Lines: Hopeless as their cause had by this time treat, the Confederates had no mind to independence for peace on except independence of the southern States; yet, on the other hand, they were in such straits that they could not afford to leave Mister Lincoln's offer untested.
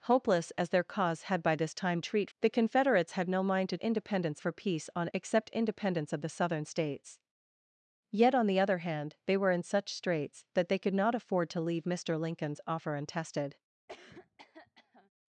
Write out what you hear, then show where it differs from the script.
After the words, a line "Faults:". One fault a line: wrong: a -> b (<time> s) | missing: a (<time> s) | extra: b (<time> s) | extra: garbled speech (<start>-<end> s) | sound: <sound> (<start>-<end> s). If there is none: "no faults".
Hopeless as their cause had by this time treat, the Confederates had no mind to independence for peace on except independence of the southern States; yet, on the other hand, they were in such straits that they could not afford to leave Mister Lincoln's offer untested.
Faults:
sound: cough (13.9-15.1 s)